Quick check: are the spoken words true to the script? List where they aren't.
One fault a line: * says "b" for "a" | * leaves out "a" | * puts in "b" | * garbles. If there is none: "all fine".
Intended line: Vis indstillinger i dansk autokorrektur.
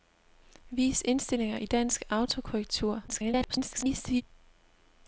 * garbles